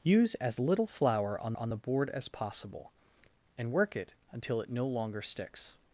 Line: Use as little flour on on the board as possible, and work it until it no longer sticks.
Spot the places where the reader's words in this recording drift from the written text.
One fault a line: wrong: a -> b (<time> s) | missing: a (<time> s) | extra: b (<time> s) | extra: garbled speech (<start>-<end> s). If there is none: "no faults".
no faults